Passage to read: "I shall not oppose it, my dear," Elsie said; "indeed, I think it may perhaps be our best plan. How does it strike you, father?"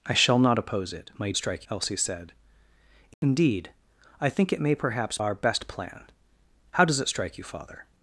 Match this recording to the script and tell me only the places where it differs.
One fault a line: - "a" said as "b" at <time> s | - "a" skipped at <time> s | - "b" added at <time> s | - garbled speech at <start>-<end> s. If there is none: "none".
- "dear" said as "strike" at 1.4 s
- "be" skipped at 5.2 s